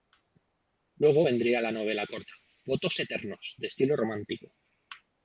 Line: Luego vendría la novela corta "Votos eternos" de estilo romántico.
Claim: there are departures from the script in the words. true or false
false